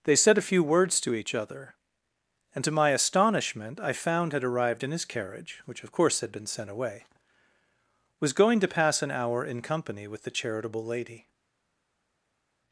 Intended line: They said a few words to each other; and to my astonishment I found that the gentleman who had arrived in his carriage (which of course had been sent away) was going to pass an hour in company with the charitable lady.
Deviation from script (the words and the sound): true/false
true